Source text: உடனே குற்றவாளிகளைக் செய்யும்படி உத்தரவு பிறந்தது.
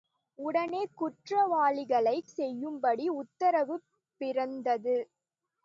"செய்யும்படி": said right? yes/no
yes